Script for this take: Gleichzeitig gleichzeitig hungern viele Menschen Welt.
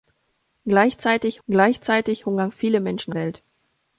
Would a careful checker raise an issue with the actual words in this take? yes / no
no